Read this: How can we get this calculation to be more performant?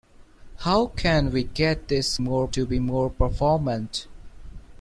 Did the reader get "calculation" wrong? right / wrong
wrong